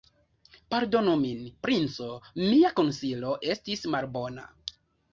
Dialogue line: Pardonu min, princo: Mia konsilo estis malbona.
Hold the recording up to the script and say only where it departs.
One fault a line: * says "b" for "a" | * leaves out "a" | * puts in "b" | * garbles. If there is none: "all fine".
all fine